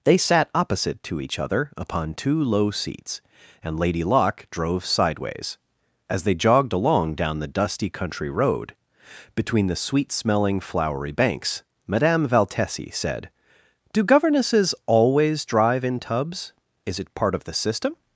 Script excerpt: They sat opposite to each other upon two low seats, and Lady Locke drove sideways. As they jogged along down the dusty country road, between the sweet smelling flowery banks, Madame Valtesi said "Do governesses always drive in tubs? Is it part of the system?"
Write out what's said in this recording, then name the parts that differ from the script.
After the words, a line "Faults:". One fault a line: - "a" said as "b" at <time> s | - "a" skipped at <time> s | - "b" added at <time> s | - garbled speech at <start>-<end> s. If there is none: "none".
They sat opposite to each other upon two low seats, and Lady Locke drove sideways. As they jogged along down the dusty country road, between the sweet smelling flowery banks, Madame Valtesi said "Do governesses always drive in tubs? Is it part of the system?"
Faults:
none